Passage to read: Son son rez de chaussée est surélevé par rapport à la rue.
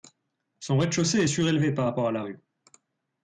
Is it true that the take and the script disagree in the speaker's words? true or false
true